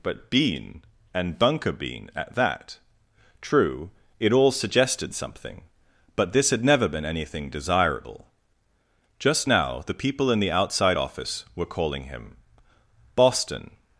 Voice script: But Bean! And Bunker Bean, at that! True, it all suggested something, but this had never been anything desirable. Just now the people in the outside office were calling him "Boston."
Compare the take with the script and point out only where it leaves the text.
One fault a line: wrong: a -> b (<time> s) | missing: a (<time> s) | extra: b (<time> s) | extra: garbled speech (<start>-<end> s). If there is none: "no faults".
no faults